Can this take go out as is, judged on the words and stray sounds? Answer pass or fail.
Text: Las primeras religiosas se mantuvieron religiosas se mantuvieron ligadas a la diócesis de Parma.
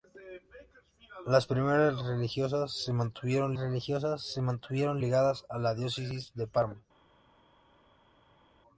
pass